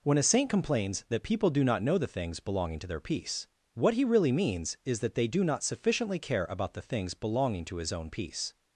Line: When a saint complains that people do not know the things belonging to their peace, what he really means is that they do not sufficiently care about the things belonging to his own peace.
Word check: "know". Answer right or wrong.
right